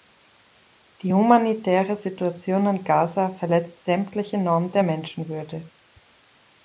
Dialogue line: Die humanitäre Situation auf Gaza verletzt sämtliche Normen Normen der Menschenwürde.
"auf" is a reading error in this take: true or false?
true